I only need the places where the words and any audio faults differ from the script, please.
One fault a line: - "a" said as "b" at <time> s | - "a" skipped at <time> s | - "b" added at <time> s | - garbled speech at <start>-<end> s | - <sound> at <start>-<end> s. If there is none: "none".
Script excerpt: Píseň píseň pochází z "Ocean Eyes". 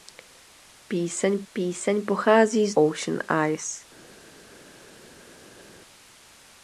none